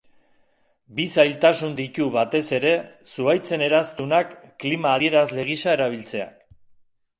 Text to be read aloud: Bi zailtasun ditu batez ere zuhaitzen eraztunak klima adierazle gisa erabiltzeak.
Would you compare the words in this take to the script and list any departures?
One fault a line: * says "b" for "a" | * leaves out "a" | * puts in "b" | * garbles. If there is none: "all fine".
all fine